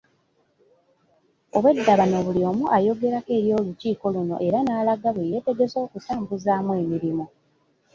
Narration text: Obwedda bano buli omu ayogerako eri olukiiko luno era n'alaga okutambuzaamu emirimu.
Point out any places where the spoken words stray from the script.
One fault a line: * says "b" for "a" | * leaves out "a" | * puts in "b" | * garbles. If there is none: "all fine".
* puts in "bwe yeetegese"